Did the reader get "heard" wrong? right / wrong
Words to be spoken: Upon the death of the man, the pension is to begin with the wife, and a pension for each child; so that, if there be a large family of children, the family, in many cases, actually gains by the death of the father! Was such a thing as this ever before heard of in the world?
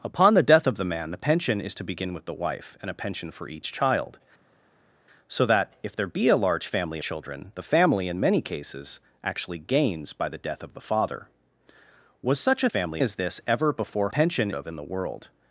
wrong